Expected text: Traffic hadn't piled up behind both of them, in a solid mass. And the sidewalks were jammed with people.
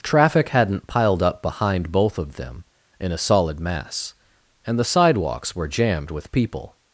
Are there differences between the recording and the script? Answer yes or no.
no